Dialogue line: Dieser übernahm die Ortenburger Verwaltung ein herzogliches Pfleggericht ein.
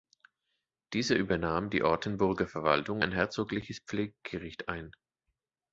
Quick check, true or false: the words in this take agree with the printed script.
true